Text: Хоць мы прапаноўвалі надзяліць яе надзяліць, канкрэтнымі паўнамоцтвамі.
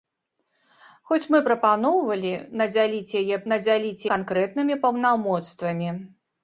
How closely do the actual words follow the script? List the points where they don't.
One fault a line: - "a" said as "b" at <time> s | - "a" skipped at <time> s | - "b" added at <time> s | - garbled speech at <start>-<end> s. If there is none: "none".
none